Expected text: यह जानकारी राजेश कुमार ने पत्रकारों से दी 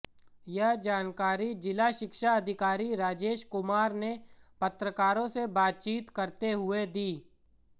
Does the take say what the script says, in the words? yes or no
no